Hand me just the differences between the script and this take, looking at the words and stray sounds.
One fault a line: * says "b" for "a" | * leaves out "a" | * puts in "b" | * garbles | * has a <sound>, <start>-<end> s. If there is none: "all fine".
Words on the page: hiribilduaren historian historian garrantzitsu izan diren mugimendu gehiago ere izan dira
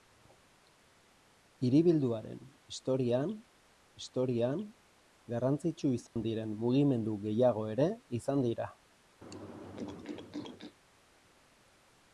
* has a dropout, 6.1-6.2 s
* has a throat clearing, 9.2-10.8 s